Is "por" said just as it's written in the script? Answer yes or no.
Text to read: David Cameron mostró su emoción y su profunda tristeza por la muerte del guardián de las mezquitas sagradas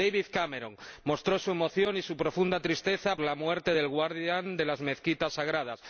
no